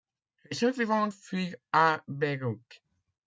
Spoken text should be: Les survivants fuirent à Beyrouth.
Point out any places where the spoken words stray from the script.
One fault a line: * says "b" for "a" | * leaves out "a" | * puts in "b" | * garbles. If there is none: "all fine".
all fine